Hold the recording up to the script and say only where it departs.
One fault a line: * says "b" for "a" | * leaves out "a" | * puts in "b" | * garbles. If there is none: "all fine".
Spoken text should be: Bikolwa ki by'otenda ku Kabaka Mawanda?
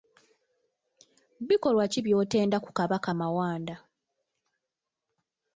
all fine